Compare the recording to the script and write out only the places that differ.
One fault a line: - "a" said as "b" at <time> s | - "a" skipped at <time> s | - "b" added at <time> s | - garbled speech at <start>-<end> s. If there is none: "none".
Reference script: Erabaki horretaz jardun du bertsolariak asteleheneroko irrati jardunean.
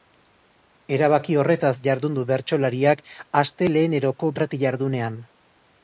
none